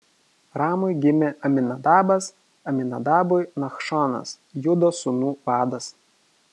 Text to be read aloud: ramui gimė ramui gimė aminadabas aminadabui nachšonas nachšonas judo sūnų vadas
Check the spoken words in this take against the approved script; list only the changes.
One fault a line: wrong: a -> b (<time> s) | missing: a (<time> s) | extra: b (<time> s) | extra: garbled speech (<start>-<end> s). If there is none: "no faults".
missing: ramui gimė (1.3 s)
missing: nachšonas (4.3 s)